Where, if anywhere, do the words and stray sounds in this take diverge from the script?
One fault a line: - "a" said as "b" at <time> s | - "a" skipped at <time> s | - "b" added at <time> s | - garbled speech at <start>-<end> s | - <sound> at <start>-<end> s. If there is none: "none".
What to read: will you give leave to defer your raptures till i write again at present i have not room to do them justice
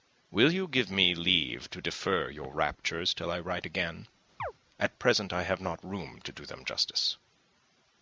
- "me" added at 0.9 s
- chirp at 4.4-4.5 s